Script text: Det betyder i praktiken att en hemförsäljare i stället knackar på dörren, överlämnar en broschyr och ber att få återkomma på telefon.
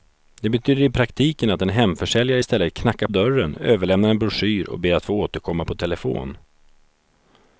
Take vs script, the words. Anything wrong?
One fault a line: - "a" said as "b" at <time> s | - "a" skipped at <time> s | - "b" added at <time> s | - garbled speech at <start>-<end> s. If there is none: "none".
- "på" skipped at 3.1 s